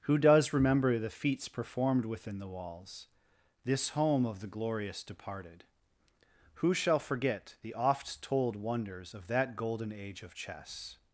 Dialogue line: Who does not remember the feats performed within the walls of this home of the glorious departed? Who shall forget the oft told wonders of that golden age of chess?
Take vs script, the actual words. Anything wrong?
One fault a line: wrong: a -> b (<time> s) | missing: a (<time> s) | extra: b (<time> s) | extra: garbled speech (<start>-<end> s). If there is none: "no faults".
missing: not (0.5 s)
missing: of (3.1 s)